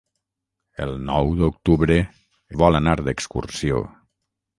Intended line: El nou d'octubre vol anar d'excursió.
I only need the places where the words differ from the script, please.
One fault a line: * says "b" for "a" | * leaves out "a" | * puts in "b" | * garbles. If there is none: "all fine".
all fine